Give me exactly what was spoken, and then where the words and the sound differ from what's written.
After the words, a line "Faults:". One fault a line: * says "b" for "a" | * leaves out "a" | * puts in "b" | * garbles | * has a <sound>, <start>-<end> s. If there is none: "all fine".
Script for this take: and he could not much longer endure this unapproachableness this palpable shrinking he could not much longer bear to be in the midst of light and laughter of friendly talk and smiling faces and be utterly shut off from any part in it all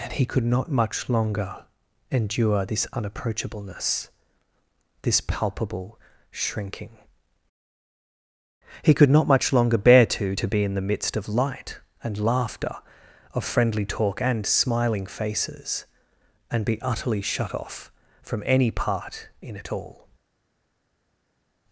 and he could not much longer endure this unapproachableness this palpable shrinking he could not much longer bear to to be in the midst of light and laughter of friendly talk and smiling faces and be utterly shut off from any part in it all
Faults:
* puts in "to"